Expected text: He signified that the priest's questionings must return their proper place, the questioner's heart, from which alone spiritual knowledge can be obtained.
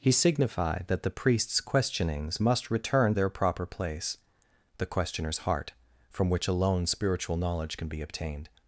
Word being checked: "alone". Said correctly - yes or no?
yes